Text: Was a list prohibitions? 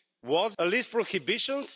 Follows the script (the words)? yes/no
yes